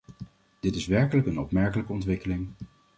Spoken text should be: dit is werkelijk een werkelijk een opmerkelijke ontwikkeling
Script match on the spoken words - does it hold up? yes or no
no